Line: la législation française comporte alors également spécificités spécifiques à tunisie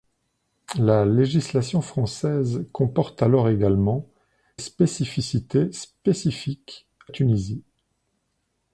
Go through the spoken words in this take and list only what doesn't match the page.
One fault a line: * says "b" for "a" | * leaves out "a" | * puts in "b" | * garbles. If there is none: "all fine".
all fine